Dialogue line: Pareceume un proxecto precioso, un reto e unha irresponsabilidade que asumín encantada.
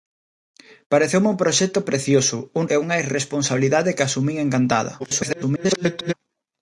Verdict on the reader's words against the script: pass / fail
fail